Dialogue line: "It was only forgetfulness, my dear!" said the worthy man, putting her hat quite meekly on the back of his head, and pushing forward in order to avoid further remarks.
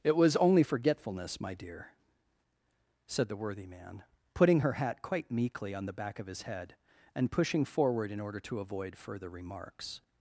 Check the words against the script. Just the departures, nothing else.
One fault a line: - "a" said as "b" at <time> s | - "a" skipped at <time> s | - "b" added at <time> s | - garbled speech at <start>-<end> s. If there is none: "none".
none